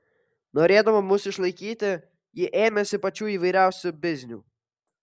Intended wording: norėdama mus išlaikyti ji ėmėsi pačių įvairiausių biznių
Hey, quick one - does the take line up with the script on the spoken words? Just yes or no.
yes